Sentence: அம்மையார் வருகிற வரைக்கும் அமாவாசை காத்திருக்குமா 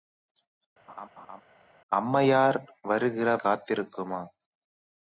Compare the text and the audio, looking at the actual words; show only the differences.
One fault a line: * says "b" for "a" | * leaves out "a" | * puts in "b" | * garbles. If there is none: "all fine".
* leaves out "வரைக்கும் அமாவாசை"